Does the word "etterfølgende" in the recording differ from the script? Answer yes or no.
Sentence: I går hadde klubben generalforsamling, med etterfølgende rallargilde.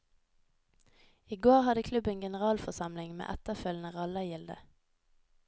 no